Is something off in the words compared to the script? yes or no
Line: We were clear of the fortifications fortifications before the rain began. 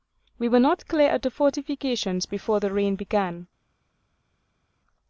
yes